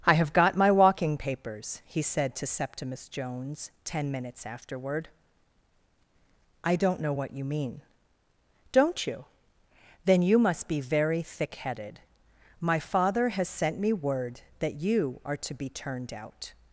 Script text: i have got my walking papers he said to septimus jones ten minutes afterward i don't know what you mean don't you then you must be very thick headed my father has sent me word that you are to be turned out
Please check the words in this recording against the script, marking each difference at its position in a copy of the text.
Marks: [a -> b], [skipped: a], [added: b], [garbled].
i have got my walking papers he said to septimus jones ten minutes afterward i don't know what you mean don't you then you must be very thick headed my father has sent me word that you are to be turned out